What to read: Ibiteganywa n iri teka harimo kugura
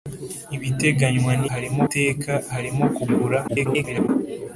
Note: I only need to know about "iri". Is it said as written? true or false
false